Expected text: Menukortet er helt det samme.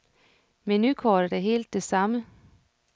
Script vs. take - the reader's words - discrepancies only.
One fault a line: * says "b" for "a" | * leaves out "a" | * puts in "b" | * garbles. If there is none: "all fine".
all fine